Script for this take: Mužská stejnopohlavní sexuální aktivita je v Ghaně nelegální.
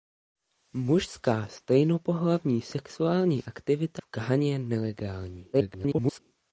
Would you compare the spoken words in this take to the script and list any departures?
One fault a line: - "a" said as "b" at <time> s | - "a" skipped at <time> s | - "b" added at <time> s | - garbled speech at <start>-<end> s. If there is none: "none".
- "je" skipped at 4.0 s
- garbled speech at 5.5-6.2 s